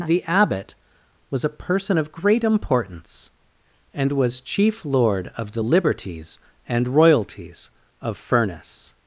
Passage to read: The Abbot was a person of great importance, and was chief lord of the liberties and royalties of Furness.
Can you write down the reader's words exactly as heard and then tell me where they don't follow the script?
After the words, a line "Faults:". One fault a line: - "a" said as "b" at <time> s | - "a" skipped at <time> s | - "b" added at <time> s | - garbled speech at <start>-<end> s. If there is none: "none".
The Abbot was a person of great importance, and was chief lord of the liberties and royalties of Furness.
Faults:
none